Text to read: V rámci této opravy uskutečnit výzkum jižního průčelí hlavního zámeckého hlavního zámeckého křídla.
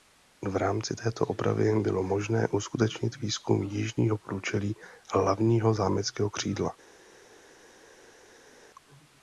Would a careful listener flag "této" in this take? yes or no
no